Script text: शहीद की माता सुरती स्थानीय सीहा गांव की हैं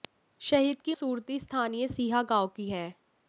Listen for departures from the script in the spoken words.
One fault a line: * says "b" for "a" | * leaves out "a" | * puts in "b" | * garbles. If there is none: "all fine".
* leaves out "माता"